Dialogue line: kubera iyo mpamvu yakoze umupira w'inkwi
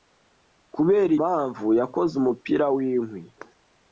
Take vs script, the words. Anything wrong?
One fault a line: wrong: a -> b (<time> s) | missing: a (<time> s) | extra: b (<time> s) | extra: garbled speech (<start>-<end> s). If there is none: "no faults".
missing: iyo (1.1 s)